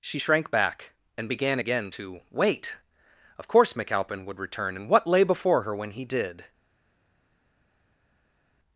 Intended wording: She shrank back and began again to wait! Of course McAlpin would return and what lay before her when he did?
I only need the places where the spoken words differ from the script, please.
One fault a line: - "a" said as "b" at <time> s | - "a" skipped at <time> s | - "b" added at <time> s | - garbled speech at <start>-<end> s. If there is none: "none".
none